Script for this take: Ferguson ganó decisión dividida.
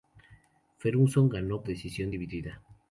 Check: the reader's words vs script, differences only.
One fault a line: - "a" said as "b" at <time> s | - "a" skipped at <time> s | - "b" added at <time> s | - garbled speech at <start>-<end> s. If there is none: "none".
none